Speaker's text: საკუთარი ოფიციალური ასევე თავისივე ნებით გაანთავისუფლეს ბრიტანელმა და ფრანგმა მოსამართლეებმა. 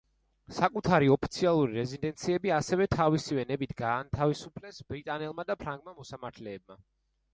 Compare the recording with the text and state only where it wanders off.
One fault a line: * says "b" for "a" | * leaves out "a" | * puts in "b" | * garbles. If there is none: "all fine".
* puts in "რეზიდენციები"